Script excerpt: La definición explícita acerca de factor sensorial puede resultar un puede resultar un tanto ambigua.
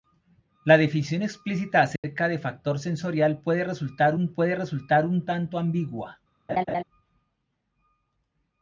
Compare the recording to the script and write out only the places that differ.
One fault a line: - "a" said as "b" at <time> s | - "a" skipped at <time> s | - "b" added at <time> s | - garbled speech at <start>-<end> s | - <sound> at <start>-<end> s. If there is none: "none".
- dropout at 2.0-2.0 s
- laugh at 6.5-6.8 s